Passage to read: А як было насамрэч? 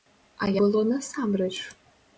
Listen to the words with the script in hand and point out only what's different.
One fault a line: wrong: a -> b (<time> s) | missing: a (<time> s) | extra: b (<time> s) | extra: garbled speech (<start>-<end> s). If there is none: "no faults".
missing: як (0.5 s)